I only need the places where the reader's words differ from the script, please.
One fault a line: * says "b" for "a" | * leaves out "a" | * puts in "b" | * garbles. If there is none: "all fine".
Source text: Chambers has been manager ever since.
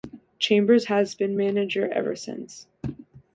all fine